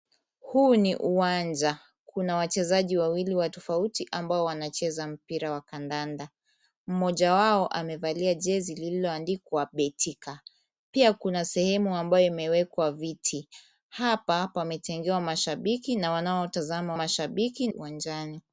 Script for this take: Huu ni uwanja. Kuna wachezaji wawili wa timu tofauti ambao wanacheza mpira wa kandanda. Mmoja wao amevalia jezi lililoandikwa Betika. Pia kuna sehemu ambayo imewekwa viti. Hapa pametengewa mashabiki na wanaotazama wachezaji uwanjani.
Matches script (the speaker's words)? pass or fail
fail